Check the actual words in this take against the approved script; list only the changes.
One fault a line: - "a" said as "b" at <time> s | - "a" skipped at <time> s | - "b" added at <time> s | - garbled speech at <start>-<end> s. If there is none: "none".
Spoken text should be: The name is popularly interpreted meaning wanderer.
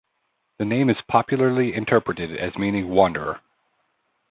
- "as" added at 2.4 s